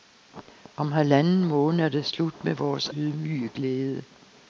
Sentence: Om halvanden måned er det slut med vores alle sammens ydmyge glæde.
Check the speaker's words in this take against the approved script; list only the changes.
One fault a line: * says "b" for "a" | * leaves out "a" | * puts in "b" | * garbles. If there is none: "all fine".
* leaves out "alle sammens"